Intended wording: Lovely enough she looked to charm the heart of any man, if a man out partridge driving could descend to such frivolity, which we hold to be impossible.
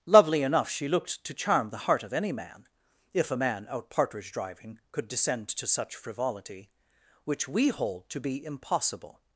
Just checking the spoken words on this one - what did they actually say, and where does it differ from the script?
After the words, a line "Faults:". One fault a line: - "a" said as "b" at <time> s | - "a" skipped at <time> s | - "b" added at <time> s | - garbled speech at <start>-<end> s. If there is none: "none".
Lovely enough she looked to charm the heart of any man, if a man out partridge driving could descend to such frivolity, which we hold to be impossible.
Faults:
none